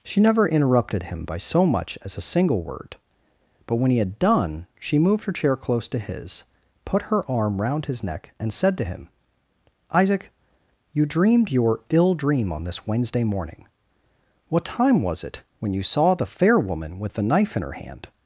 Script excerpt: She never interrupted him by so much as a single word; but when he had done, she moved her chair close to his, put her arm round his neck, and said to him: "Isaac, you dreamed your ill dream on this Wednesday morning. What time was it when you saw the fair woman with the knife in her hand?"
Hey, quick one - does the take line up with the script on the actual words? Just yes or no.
yes